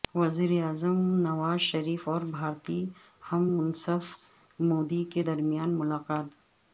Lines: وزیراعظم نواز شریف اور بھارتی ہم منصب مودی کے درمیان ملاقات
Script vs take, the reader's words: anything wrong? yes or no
no